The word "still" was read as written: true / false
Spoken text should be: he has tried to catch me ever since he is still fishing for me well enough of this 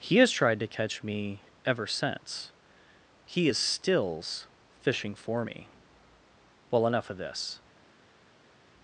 false